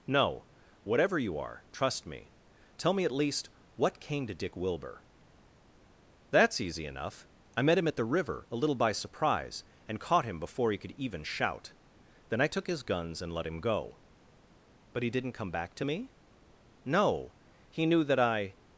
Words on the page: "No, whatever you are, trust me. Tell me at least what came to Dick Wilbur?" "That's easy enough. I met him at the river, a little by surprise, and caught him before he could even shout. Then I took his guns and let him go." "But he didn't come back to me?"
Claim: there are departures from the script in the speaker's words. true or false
true